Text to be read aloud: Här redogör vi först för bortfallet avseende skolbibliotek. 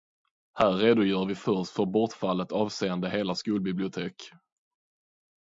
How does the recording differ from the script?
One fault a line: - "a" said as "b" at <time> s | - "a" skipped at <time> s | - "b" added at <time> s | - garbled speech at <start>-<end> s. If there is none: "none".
- "hela" added at 3.1 s